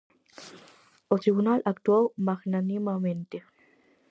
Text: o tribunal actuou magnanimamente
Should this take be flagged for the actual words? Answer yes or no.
no